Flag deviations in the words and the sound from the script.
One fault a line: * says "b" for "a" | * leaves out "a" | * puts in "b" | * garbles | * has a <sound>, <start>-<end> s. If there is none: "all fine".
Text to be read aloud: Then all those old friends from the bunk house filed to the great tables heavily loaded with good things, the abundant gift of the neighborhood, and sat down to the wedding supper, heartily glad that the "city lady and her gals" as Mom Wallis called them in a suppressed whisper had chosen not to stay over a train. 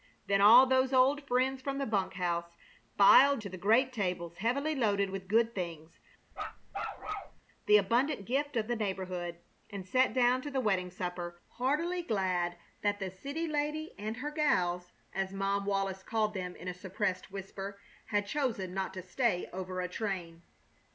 * has a bark, 6.3-7.4 s